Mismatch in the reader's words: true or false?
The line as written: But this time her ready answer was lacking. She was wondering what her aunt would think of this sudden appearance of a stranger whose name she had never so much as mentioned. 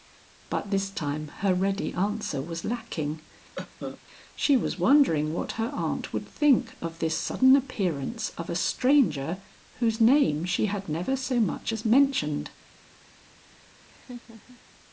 false